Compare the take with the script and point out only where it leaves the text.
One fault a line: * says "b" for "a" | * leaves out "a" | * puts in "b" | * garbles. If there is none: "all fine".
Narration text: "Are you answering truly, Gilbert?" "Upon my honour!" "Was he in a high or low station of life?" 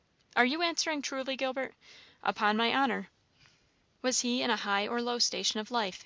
all fine